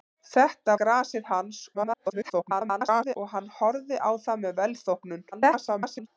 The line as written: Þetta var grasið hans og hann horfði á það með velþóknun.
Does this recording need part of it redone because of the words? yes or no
yes